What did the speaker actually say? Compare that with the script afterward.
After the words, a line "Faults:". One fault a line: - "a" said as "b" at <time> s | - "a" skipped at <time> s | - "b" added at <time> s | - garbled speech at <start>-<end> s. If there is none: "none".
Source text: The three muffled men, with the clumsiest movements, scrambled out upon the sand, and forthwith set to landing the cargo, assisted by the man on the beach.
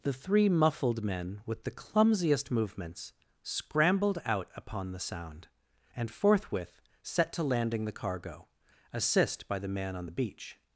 The three muffled men, with the clumsiest movements, scrambled out upon the sound, and forthwith set to landing the cargo, assist by the man on the beach.
Faults:
- "sand" said as "sound" at 5.0 s
- "assisted" said as "assist" at 8.9 s